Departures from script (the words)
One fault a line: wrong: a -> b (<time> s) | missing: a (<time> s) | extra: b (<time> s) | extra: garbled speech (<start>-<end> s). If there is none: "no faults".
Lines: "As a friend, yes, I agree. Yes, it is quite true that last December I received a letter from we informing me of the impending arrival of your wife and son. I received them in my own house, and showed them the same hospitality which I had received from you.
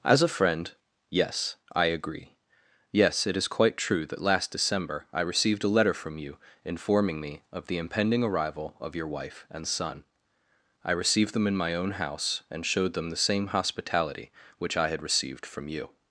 wrong: we -> you (6.2 s)